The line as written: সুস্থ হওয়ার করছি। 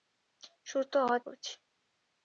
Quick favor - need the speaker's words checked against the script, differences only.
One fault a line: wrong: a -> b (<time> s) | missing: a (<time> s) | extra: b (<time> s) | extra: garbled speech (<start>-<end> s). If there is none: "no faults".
no faults